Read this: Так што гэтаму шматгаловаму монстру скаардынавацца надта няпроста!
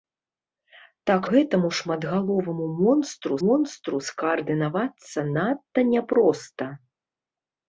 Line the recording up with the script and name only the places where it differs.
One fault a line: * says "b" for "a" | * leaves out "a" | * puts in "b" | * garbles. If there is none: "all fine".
* leaves out "што"
* puts in "монстру"